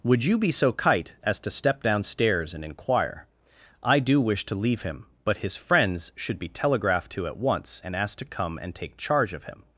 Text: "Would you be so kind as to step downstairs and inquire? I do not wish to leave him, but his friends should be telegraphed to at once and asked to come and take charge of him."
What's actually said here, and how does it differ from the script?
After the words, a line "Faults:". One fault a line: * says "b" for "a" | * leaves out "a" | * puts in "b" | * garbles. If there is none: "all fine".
"Would you be so kite as to step downstairs and inquire? I do wish to leave him, but his friends should be telegraphed to at once and asked to come and take charge of him."
Faults:
* says "kite" for "kind"
* leaves out "not"